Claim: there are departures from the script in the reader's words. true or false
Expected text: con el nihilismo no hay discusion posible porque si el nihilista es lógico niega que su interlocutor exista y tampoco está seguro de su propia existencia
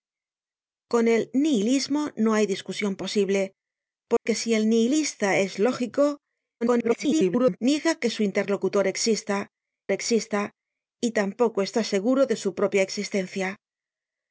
true